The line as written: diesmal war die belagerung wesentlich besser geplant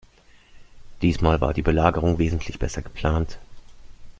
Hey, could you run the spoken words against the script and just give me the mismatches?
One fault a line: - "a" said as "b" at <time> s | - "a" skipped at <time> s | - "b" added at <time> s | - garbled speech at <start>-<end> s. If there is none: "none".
none